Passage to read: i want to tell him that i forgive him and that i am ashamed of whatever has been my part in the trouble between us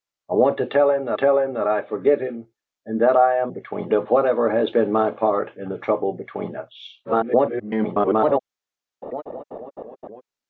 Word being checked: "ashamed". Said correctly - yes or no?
no